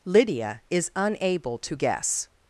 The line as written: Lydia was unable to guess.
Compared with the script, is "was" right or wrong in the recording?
wrong